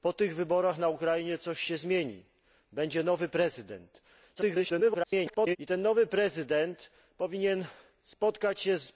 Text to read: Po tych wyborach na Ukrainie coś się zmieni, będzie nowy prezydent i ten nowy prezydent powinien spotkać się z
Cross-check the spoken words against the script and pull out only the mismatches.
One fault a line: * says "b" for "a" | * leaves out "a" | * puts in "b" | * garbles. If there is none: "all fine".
* garbles